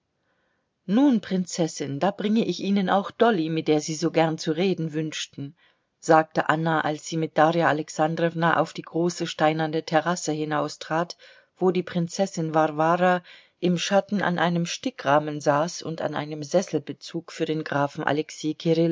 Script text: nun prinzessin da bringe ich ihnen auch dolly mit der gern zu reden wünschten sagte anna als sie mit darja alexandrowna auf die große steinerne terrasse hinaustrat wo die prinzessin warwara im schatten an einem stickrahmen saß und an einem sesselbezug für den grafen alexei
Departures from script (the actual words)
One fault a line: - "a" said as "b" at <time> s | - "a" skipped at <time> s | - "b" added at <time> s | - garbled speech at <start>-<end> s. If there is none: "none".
- "sie so" added at 3.8 s